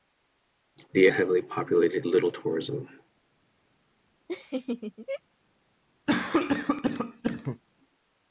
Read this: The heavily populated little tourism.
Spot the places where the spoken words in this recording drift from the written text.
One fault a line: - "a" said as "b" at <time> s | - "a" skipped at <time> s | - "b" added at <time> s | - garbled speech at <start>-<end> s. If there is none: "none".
none